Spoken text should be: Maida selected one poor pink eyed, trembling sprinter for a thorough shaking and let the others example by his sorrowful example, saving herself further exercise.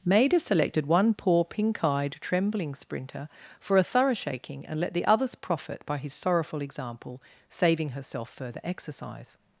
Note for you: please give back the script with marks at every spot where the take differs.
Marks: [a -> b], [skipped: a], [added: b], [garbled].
Maida selected one poor pink eyed, trembling sprinter for a thorough shaking and let the others [example -> profit] by his sorrowful example, saving herself further exercise.